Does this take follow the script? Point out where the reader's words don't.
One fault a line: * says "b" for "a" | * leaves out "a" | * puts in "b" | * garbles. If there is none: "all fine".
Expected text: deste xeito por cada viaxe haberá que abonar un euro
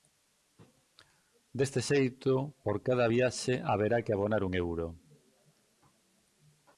all fine